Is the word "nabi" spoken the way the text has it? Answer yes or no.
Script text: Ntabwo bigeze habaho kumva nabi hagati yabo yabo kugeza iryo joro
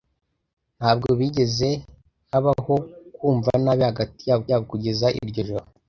yes